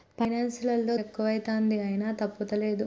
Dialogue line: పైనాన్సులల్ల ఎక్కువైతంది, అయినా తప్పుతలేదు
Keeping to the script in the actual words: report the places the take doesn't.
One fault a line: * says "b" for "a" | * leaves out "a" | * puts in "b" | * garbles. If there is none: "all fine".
all fine